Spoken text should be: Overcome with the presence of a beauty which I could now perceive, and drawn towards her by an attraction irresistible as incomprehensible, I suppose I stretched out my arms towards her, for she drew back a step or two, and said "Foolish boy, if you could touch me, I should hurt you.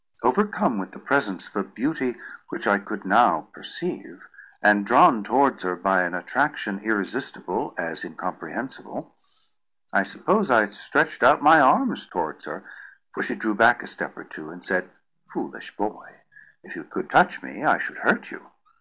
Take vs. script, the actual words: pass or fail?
pass